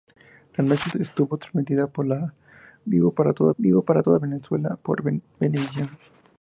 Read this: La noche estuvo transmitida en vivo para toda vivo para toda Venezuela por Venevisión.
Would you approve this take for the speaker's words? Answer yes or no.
yes